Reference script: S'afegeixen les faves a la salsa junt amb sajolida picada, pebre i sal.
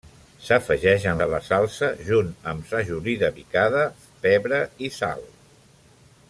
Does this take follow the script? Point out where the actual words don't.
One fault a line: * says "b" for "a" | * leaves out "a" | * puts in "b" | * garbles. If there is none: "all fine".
* leaves out "les faves"